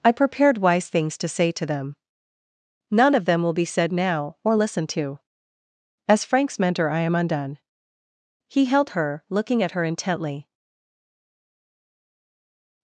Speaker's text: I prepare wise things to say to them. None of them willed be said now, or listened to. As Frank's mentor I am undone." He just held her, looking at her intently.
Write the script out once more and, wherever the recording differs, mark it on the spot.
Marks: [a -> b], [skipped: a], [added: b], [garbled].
I [prepare -> prepared] wise things to say to them. None of them [willed -> will] be said now, or listened to. As Frank's mentor I am undone." He [skipped: just] held her, looking at her intently.